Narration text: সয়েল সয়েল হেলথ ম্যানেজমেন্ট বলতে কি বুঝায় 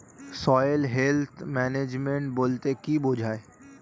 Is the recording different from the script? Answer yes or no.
yes